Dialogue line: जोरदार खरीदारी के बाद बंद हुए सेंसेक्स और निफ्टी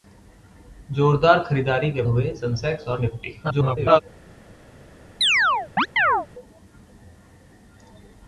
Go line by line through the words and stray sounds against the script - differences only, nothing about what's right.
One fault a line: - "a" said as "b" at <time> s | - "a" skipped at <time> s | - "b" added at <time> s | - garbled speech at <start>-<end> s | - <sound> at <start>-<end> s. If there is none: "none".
- "बाद बंद" skipped at 2.0 s
- garbled speech at 3.4-4.0 s
- chirp at 5.2-6.3 s